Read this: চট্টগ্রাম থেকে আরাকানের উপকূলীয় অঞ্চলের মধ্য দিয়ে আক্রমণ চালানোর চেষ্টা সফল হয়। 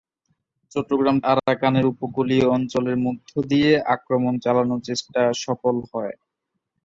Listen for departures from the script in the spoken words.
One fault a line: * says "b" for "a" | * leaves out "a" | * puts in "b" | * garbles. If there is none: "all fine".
* leaves out "থেকে"